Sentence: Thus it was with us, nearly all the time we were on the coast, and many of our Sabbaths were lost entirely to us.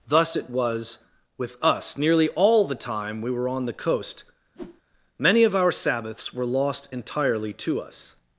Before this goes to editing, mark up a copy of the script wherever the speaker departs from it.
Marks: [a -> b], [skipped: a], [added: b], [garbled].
Thus it was with us, nearly all the time we were on the coast, [skipped: and] many of our Sabbaths were lost entirely to us.